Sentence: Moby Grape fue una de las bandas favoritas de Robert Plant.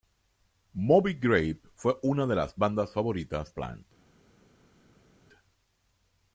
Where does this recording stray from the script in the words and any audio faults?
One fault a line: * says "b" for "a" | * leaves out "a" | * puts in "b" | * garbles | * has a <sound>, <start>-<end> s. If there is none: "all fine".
* leaves out "de Robert"